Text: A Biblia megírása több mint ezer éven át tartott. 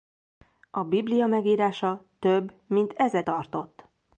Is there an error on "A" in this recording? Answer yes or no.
no